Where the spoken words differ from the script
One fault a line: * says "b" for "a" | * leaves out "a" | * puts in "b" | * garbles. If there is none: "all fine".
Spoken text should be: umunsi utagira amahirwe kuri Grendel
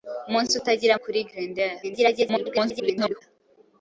* leaves out "amahirwe"
* garbles